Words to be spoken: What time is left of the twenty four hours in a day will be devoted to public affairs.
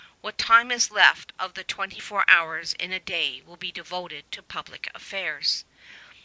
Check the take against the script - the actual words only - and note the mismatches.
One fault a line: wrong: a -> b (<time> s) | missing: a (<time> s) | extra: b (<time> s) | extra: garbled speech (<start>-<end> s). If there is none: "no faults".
no faults